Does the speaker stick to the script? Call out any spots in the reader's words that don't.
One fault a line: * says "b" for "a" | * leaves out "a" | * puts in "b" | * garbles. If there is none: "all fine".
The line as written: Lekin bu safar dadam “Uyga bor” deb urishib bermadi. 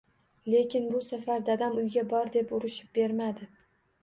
all fine